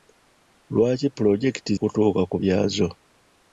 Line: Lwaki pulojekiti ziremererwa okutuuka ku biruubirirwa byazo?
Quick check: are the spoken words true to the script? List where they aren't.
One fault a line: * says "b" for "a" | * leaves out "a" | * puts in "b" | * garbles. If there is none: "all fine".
* leaves out "ziremererwa"
* leaves out "biruubirirwa"